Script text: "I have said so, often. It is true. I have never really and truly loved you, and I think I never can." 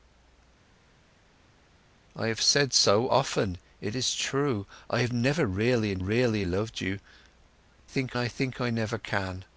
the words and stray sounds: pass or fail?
fail